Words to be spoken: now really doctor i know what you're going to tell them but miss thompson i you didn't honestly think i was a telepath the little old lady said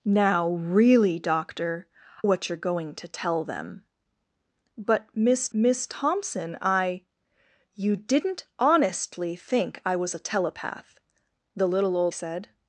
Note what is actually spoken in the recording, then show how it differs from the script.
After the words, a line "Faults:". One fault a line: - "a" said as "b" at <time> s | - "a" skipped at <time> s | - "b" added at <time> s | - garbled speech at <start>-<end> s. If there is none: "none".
now really doctor what you're going to tell them but miss miss thompson i you didn't honestly think i was a telepath the little old said
Faults:
- "i know" skipped at 1.9 s
- "miss" added at 5.5 s
- "lady" skipped at 12.1 s